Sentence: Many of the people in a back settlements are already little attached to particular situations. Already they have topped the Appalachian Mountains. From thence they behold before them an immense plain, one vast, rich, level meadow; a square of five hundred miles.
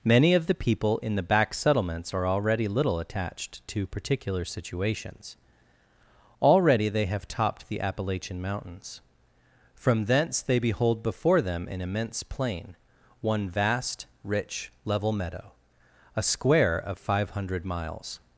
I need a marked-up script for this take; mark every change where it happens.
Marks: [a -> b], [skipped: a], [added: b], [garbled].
Many of the people in [a -> the] back settlements are already little attached to particular situations. Already they have topped the Appalachian Mountains. From thence they behold before them an immense plain, one vast, rich, level meadow; a square of five hundred miles.